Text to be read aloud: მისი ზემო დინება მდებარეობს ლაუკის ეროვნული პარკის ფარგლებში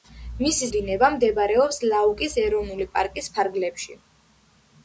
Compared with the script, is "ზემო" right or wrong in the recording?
wrong